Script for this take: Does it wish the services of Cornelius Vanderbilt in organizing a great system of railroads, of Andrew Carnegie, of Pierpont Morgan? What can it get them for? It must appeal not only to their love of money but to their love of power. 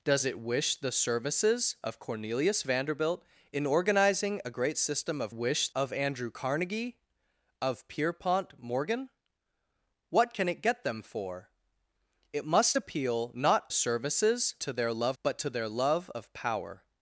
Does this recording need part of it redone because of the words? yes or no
yes